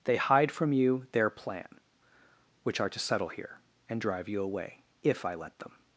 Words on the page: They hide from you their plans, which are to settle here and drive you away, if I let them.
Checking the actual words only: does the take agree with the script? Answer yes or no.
no